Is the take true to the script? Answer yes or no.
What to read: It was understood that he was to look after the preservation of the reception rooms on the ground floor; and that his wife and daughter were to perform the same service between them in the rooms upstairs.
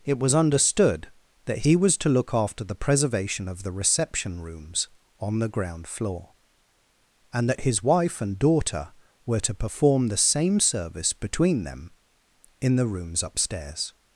yes